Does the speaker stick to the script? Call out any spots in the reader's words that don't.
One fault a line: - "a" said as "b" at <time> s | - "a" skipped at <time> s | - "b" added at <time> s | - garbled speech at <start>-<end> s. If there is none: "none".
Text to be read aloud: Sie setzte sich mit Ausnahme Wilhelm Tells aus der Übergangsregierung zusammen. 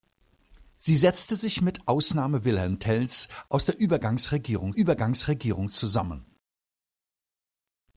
- "Übergangsregierung" added at 4.8 s